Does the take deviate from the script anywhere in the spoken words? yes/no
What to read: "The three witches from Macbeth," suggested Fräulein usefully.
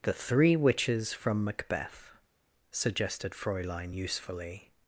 no